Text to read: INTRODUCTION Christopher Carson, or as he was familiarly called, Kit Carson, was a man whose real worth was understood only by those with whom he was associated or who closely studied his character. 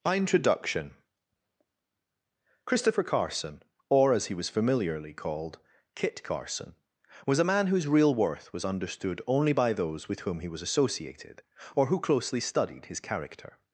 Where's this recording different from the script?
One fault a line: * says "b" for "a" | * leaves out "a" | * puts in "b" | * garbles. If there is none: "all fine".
all fine